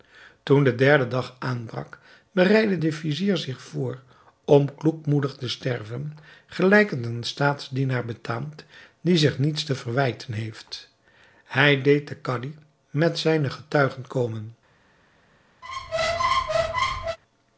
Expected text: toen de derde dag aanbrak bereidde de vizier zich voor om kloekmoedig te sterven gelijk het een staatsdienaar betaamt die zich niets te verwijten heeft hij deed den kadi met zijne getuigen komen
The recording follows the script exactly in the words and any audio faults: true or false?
false